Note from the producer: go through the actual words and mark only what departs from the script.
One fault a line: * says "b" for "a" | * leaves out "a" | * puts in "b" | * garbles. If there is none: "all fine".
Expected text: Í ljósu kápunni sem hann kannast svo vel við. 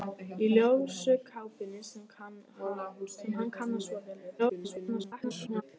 * garbles